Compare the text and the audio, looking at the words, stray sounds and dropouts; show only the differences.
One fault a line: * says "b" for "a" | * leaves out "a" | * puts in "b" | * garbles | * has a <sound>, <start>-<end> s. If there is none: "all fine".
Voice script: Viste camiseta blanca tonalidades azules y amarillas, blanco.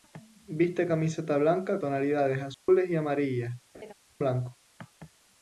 * has a dropout, 2.5-2.7 s
* has a laugh, 3.7-3.9 s